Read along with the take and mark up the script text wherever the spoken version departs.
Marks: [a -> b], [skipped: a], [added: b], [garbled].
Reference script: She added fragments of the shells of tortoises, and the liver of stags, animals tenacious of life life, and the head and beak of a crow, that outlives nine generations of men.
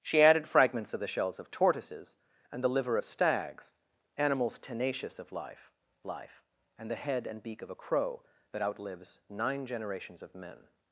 She added fragments of the shells of tortoises, and the liver of stags, animals tenacious of life life, and the head and beak of a crow, that outlives nine generations of men.